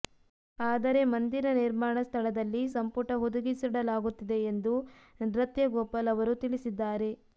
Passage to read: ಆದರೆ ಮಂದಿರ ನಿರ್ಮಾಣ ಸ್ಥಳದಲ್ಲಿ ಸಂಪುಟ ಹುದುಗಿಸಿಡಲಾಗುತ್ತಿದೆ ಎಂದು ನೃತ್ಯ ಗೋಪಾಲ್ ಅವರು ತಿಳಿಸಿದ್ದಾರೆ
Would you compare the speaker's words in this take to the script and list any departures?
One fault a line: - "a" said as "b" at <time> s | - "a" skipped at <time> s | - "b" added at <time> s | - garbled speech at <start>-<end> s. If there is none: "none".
none